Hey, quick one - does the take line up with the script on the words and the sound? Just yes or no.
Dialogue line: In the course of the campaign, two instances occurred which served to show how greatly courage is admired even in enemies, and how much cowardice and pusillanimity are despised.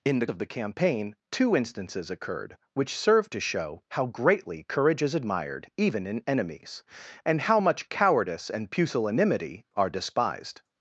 no